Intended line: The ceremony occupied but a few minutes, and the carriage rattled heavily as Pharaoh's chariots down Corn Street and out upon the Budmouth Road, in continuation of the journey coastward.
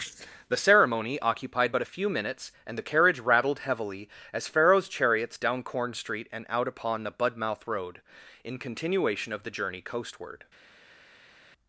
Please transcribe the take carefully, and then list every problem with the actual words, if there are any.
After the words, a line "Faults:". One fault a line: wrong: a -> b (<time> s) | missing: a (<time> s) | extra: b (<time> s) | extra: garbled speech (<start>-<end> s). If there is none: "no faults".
The ceremony occupied but a few minutes, and the carriage rattled heavily as Pharaoh's chariots down Corn Street and out upon the Budmouth Road, in continuation of the journey coastward.
Faults:
no faults